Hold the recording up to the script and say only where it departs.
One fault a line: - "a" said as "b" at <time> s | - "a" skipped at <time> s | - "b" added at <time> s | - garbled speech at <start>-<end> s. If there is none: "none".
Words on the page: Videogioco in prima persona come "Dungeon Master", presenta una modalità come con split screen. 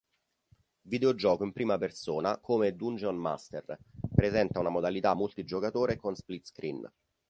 - "come" said as "multigiocatore" at 5.1 s